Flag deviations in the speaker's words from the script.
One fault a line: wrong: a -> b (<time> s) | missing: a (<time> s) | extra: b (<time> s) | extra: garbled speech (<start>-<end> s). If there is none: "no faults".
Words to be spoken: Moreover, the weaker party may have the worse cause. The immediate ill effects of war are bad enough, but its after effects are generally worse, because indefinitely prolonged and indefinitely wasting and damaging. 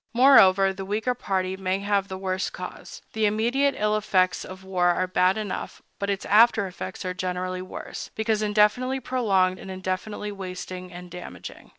no faults